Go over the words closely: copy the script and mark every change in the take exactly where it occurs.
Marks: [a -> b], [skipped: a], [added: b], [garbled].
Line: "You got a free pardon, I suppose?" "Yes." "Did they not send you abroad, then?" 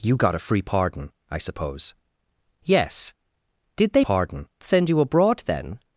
"You got a free pardon, I suppose?" "Yes." "Did they [not -> pardon] send you abroad, then?"